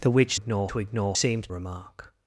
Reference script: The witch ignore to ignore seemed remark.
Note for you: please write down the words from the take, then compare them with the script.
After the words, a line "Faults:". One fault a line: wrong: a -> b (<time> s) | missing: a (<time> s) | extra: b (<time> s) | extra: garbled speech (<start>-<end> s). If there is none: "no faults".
The witch ignore to ignore seemed remark.
Faults:
no faults